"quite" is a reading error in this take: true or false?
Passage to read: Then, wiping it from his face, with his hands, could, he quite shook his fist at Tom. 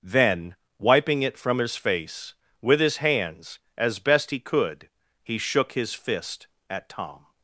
true